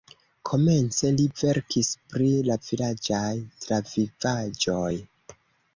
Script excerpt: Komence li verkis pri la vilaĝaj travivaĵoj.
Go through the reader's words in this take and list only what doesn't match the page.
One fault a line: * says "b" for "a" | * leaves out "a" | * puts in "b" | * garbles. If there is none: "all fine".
all fine